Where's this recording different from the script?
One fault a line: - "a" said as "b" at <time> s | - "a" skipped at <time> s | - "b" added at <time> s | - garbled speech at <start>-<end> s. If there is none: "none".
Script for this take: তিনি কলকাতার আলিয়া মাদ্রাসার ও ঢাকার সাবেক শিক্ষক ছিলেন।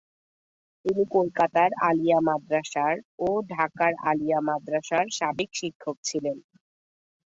- "আলিয়া মাদ্রাসার" added at 4.1 s